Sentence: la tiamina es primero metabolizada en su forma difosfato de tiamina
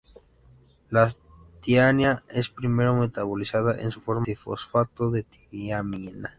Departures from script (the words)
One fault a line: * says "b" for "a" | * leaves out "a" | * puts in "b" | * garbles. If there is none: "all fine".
all fine